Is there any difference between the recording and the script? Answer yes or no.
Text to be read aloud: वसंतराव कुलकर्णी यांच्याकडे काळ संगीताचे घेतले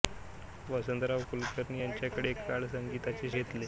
no